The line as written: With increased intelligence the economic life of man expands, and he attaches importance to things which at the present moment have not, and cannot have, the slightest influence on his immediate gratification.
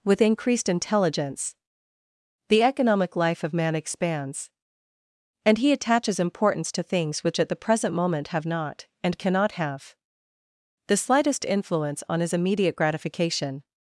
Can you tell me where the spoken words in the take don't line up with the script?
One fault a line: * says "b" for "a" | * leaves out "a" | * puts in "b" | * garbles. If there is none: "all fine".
all fine